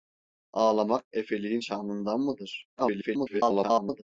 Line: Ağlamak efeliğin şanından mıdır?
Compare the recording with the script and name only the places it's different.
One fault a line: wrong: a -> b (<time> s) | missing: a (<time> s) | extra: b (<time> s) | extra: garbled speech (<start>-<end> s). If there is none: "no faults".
extra: garbled speech (2.8-4.0 s)